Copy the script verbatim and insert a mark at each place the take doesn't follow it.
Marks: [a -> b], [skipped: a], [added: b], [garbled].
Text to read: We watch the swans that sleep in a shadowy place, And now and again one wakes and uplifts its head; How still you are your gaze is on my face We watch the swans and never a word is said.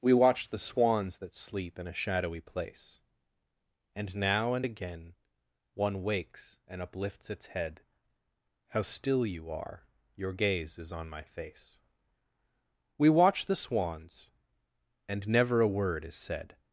We watch the swans that sleep in a shadowy place, And now and again one wakes and uplifts its head; How still you are your gaze is on my face We watch the swans and never a word is said.